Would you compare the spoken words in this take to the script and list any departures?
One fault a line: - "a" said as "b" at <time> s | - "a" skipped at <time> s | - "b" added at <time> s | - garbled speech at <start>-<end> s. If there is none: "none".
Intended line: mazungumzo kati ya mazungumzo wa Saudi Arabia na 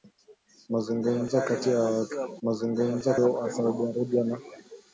none